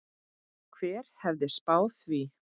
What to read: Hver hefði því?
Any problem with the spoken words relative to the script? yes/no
yes